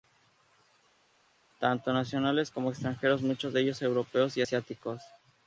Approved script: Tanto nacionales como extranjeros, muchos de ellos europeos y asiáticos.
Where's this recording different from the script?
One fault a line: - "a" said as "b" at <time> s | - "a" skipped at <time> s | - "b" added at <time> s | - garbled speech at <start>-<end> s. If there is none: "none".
none